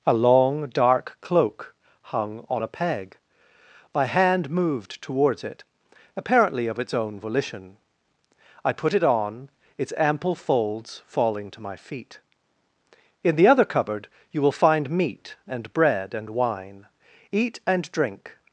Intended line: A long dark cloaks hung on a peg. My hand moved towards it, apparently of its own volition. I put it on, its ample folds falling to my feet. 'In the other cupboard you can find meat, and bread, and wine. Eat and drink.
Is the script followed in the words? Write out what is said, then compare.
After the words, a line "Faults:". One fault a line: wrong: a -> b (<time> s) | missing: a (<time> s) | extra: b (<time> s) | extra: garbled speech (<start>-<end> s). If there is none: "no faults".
A long dark cloak hung on a peg. My hand moved towards it, apparently of its own volition. I put it on, its ample folds falling to my feet. 'In the other cupboard you will find meat, and bread, and wine. Eat and drink.
Faults:
wrong: cloaks -> cloak (1.2 s)
wrong: can -> will (14.4 s)